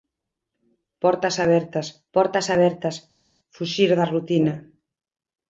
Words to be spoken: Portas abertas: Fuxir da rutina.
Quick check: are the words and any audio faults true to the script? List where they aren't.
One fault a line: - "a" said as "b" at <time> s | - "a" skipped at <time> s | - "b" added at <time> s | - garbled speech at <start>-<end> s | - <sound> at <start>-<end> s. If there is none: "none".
- "portas abertas" added at 2.2 s